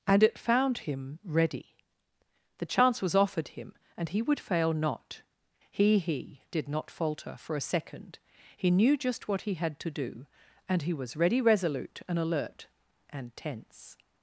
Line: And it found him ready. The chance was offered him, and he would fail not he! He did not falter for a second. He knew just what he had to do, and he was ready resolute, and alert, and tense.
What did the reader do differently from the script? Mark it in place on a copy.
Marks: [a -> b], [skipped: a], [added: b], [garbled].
And it found him ready. The chance was offered him, and he would fail not he! He did not falter for a second. He knew just what he had to do, and he was ready resolute, and alert, and tense.